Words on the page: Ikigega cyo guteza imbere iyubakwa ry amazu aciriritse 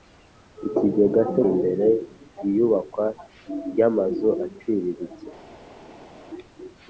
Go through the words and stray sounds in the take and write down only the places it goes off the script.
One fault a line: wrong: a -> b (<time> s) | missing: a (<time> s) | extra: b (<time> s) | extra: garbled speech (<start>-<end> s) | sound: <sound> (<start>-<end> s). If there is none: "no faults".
missing: guteza (1.4 s)